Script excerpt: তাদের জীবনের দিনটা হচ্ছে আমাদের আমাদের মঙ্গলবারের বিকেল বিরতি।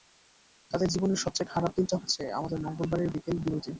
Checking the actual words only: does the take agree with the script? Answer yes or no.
no